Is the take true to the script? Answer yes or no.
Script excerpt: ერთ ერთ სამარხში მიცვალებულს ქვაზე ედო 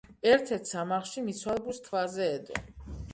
yes